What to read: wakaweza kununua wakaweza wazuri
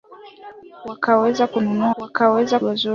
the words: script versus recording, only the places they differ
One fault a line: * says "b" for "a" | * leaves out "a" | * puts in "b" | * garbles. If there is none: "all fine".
all fine